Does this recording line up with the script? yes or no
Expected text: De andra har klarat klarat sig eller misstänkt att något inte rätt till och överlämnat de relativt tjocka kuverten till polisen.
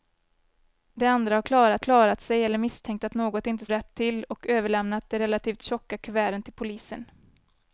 yes